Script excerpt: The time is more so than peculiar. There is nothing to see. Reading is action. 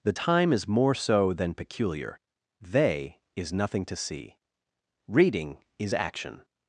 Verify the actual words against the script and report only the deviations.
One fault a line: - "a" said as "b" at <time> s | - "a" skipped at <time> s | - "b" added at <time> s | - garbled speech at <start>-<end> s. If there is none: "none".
- "There" said as "They" at 2.6 s